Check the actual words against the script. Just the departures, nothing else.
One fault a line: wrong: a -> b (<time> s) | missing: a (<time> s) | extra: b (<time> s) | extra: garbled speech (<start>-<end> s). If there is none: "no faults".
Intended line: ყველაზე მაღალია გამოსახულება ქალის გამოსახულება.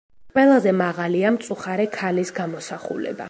wrong: გამოსახულება -> მწუხარე (1.3 s)